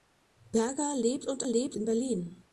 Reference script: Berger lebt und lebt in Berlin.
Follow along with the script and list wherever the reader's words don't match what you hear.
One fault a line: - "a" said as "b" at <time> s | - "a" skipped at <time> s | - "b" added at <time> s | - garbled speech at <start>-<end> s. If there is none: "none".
none